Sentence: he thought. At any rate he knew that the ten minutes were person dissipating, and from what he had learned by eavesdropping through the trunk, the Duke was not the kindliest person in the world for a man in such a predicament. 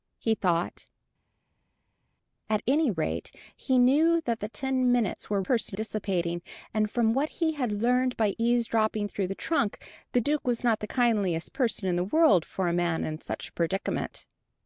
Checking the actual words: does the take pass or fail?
pass